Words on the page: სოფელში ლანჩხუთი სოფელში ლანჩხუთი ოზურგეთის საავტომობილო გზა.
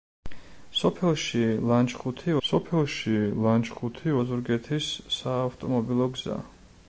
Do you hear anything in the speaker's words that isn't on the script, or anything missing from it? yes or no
no